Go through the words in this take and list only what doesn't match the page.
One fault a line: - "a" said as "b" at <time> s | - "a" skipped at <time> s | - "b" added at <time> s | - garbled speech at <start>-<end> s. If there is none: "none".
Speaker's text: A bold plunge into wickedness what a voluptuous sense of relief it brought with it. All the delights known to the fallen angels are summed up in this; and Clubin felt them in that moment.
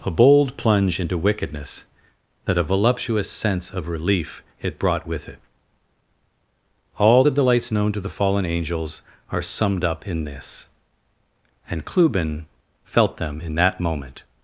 - "what" said as "that" at 2.5 s